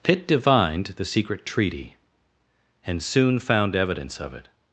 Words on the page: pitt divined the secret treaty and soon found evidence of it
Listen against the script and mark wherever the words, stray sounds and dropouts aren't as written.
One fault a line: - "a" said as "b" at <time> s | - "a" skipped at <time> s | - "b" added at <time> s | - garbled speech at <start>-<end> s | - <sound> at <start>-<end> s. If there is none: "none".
none